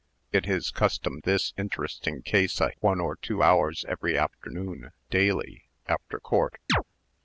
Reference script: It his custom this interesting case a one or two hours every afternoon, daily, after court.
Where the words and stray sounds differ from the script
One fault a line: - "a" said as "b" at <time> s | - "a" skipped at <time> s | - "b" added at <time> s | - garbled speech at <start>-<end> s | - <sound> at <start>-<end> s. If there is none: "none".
- chirp at 6.7-6.8 s